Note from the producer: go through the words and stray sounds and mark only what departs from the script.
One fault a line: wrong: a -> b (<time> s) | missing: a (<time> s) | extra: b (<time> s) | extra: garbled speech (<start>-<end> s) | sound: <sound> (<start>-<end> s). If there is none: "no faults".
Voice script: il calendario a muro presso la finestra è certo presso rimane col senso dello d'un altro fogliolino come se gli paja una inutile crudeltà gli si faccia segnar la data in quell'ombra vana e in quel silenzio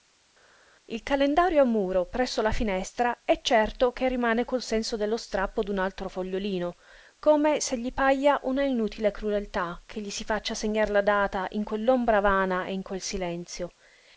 wrong: presso -> che (3.9 s)
extra: strappo (5.2 s)
extra: che (9.9 s)